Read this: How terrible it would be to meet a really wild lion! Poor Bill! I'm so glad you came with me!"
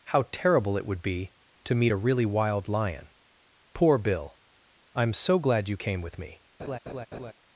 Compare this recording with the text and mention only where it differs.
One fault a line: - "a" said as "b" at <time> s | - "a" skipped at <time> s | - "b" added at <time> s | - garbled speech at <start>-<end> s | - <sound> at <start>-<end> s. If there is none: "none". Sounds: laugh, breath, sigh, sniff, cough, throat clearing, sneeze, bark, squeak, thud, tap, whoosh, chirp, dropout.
- laugh at 6.6-7.3 s